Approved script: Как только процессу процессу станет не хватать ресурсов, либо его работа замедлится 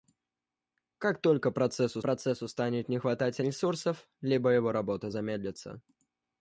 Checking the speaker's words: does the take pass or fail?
pass